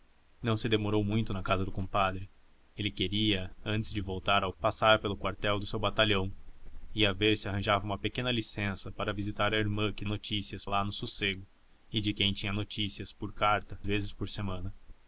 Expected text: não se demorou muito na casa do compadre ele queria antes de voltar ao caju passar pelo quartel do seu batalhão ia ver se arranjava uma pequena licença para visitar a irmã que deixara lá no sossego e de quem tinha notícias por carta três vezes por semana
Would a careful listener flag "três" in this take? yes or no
yes